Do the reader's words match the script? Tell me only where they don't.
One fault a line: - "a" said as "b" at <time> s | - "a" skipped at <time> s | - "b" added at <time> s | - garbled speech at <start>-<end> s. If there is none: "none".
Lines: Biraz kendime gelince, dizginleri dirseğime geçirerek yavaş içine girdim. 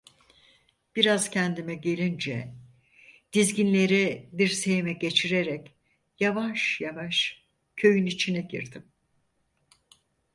- "yavaş köyün" added at 6.8 s